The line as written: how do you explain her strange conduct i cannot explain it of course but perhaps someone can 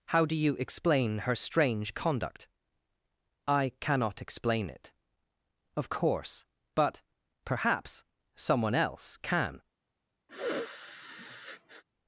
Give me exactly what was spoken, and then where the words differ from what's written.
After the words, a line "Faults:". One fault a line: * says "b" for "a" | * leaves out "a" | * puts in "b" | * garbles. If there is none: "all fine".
how do you explain her strange conduct i cannot explain it of course but perhaps someone else can
Faults:
* puts in "else"